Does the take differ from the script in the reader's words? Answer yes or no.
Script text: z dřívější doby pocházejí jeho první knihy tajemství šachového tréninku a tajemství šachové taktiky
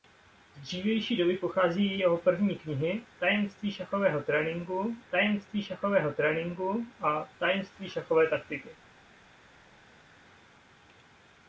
yes